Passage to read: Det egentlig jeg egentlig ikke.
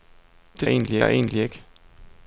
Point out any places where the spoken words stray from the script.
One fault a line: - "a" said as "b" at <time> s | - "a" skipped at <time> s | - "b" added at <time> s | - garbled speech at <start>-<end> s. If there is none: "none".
none